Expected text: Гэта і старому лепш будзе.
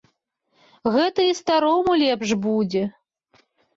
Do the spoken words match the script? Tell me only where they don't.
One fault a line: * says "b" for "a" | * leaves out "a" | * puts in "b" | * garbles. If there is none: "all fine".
all fine